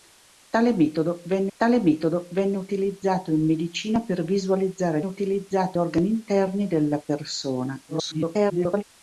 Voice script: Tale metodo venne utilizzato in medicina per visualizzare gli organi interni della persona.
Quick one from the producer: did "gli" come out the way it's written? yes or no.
no